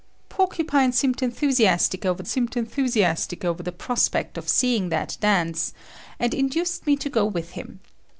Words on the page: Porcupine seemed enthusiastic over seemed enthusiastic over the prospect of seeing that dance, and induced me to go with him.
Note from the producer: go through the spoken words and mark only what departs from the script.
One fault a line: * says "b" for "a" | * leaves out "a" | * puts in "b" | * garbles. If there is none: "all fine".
all fine